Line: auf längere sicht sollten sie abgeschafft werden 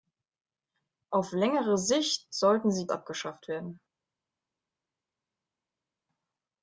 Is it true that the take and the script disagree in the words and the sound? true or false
false